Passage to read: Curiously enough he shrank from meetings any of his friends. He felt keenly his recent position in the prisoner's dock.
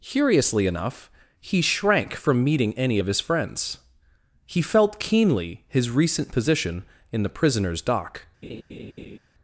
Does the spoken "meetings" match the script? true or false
false